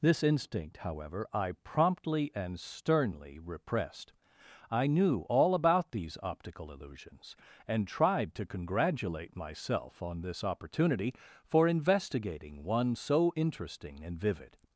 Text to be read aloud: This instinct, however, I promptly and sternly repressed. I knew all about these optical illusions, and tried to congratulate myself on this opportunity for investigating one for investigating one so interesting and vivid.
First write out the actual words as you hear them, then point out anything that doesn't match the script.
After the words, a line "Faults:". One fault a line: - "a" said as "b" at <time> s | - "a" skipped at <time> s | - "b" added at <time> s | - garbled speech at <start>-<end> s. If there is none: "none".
This instinct, however, I promptly and sternly repressed. I knew all about these optical illusions, and tried to congratulate myself on this opportunity for investigating one so interesting and vivid.
Faults:
- "for investigating one" skipped at 12.9 s